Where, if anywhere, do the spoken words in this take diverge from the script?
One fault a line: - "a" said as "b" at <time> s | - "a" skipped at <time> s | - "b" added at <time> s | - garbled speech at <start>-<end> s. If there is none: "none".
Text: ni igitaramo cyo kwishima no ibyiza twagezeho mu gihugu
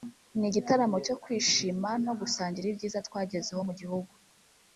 - "gusangira" added at 2.2 s